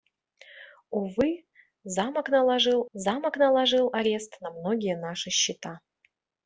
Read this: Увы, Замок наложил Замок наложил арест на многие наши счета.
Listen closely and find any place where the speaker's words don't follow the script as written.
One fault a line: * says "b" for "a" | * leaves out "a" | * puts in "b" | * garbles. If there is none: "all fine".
all fine